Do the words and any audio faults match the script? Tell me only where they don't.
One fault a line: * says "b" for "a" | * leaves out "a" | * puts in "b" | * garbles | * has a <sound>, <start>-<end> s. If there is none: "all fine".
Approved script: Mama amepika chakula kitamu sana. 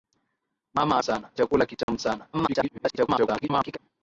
* says "sana" for "amepika"
* has a dropout, 1.8-1.9 s
* garbles